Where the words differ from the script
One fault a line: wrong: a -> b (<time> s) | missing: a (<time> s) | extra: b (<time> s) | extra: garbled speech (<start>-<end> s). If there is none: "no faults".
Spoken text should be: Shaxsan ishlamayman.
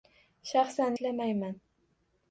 no faults